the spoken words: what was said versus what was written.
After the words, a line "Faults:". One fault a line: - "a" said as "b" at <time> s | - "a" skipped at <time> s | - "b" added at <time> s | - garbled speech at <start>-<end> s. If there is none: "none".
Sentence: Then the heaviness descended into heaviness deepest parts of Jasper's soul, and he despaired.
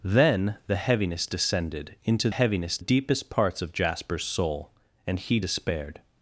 Then the heaviness descended into heaviness deepest parts of Jasper's soul, and he despaired.
Faults:
none